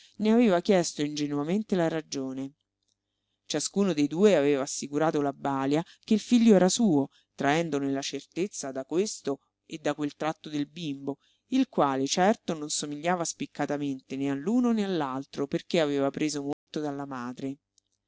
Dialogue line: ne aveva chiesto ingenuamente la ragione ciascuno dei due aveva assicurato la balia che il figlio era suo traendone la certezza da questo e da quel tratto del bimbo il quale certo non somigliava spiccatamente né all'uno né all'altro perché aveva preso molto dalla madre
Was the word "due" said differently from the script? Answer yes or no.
no